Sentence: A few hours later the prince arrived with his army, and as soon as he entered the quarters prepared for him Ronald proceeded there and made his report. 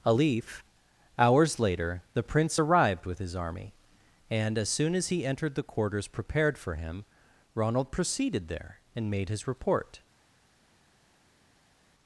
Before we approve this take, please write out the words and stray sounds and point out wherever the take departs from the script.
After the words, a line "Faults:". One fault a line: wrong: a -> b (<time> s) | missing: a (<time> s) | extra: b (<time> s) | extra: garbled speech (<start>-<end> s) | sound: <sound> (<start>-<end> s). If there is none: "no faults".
A leaf hours later the prince arrived with his army, and as soon as he entered the quarters prepared for him Ronald proceeded there and made his report.
Faults:
wrong: few -> leaf (0.1 s)